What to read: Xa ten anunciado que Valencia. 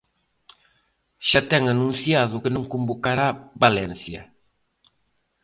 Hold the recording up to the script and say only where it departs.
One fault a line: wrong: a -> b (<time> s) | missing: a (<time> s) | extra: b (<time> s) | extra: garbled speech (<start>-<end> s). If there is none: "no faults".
extra: non convocará (2.5 s)